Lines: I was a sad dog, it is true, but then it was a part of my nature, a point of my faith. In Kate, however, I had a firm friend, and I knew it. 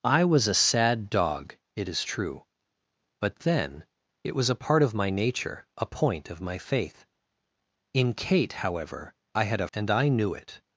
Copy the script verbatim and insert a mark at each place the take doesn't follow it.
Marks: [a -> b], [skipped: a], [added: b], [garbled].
I was a sad dog, it is true, but then it was a part of my nature, a point of my faith. In Kate, however, I had a [skipped: firm friend,] and I knew it.